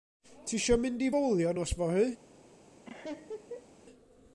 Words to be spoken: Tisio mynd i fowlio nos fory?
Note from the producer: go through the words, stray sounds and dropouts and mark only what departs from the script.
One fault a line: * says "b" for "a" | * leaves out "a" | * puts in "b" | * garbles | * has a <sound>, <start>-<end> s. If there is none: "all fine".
* has a laugh, 2.8-3.7 s